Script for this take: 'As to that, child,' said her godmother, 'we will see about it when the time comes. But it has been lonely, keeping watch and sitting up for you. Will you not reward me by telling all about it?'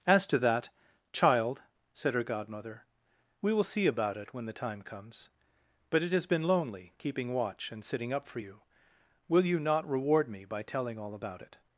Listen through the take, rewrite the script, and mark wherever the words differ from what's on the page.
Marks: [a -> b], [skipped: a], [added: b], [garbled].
'As to that, child,' said her godmother, 'we will see about it when the time comes. But it has been lonely, keeping watch and sitting up for you. Will you not reward me by telling all about it?'